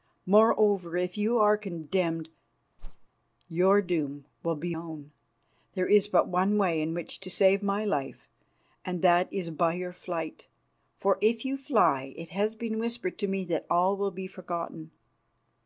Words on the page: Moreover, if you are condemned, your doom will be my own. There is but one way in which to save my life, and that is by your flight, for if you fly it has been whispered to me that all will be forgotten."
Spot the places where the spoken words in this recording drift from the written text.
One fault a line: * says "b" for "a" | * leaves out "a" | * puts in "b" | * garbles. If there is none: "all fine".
* leaves out "my"